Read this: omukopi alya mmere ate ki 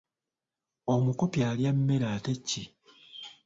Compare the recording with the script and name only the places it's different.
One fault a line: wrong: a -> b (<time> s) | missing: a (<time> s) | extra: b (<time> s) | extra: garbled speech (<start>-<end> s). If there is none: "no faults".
no faults